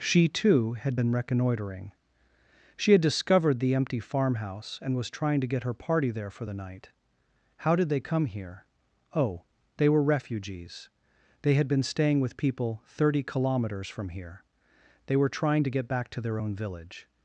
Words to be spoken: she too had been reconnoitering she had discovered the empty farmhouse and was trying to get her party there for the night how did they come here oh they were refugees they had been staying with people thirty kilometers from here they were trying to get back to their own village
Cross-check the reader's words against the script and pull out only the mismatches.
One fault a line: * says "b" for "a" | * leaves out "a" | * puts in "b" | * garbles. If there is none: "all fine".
all fine